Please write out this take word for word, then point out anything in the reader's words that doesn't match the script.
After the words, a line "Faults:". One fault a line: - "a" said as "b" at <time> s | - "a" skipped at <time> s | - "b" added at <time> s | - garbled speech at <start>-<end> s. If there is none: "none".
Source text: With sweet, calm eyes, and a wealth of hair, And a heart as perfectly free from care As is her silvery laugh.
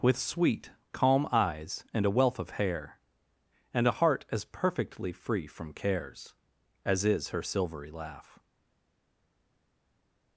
With sweet, calm eyes, and a wealth of hair, And a heart as perfectly free from cares As is her silvery laugh.
Faults:
- "care" said as "cares" at 5.7 s